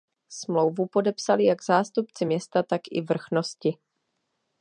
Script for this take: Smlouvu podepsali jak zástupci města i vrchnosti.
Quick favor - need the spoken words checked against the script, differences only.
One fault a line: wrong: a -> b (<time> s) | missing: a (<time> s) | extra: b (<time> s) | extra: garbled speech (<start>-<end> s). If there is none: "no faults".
extra: tak (2.6 s)